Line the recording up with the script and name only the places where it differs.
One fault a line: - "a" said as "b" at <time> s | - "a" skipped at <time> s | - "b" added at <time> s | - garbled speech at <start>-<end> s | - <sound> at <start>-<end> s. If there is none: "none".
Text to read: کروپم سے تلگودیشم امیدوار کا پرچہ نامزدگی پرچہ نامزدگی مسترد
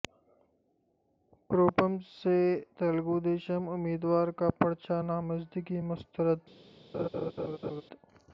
- "پرچہ نامزدگی" skipped at 5.8 s
- laugh at 6.9-7.8 s